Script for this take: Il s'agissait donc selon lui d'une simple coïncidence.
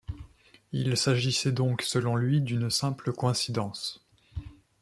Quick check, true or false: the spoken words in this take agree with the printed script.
true